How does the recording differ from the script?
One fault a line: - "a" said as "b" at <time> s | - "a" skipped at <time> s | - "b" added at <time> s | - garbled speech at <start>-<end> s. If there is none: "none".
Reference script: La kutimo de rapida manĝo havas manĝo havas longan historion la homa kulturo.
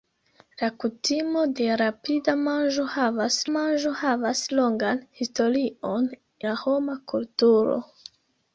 none